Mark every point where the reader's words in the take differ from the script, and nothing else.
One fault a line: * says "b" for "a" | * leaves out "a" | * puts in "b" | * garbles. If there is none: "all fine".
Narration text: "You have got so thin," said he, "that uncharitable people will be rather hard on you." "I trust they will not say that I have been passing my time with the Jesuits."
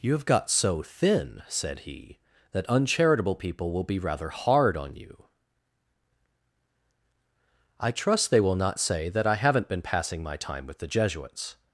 * says "haven't" for "have"